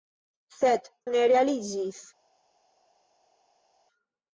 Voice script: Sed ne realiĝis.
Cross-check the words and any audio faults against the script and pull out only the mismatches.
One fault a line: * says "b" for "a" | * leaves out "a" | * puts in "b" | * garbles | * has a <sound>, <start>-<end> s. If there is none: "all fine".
all fine